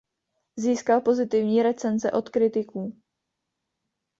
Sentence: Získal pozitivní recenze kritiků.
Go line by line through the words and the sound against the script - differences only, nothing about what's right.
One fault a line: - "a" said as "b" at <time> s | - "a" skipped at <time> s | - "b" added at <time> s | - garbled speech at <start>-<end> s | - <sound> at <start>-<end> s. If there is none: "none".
- "od" added at 2.1 s